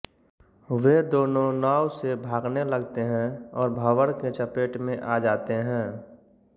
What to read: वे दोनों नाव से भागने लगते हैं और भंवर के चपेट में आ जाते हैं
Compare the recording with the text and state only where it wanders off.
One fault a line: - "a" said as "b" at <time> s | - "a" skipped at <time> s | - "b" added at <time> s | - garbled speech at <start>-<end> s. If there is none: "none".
none